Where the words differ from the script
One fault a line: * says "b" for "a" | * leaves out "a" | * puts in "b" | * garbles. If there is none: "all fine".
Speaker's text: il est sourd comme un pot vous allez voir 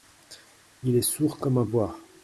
* leaves out "pot vous allez"